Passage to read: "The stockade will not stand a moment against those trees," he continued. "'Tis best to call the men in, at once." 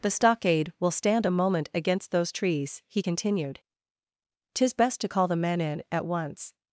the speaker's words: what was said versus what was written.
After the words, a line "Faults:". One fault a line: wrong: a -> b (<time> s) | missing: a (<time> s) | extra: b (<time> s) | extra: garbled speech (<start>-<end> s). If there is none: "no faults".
"The stockade will stand a moment against those trees," he continued. "'Tis best to call the men in, at once."
Faults:
missing: not (0.9 s)